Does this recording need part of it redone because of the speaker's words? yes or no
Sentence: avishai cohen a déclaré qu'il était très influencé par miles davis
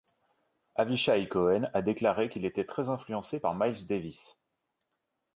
no